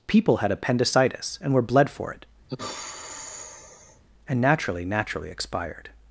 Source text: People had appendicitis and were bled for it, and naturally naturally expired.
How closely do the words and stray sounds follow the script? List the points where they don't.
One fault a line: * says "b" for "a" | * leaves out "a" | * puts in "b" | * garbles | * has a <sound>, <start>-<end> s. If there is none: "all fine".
* has a sigh, 2.5-4.0 s